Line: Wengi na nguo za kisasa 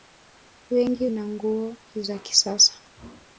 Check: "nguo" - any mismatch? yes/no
no